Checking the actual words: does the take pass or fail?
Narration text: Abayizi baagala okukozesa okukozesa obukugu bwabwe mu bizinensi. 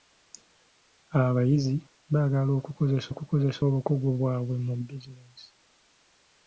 pass